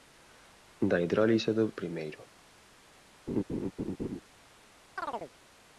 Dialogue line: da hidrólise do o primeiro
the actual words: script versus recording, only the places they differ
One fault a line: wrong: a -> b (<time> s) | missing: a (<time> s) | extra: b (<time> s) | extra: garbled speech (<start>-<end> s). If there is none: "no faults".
no faults